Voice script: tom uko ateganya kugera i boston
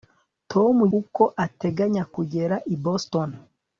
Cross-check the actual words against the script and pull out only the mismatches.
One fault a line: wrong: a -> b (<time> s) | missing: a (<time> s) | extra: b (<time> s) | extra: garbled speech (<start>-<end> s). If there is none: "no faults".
no faults